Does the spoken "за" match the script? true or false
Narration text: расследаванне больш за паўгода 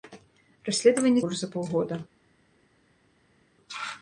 true